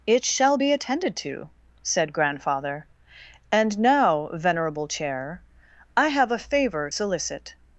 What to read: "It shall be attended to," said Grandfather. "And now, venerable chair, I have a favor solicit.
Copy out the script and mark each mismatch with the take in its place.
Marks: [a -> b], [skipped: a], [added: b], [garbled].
"It shall be attended to," said Grandfather. "And now, venerable chair, I have a favor solicit.